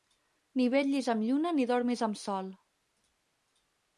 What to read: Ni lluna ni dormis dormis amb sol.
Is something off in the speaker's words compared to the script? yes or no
yes